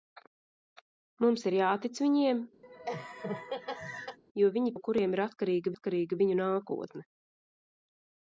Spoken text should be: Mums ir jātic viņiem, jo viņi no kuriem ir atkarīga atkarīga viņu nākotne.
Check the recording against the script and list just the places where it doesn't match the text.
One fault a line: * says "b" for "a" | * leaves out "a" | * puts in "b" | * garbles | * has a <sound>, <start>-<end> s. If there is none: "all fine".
* has a laugh, 2.6-4.2 s